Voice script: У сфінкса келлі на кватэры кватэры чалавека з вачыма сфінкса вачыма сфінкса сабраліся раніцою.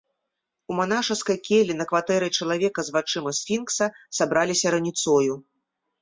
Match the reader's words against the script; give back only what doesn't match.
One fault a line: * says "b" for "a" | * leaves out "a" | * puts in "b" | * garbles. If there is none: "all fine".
* says "манашаскай" for "сфінкса"
* leaves out "кватэры"
* leaves out "вачыма сфінкса"